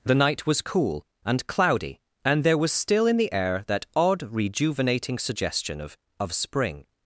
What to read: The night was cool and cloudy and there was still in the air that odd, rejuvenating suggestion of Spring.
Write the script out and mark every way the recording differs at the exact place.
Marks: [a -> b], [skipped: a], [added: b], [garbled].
The night was cool and cloudy and there was still in the air that odd, rejuvenating suggestion of [added: of] Spring.